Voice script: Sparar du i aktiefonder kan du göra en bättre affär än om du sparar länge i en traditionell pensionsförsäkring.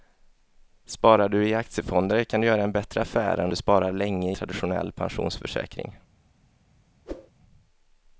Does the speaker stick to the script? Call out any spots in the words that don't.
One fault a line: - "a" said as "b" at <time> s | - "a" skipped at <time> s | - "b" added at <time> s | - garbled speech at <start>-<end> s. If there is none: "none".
- "om" skipped at 3.5 s
- "i en" skipped at 4.3 s